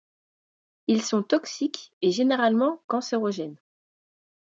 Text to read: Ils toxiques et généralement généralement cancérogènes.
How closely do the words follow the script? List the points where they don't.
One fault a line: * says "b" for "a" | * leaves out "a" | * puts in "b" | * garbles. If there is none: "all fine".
* puts in "sont"
* leaves out "généralement"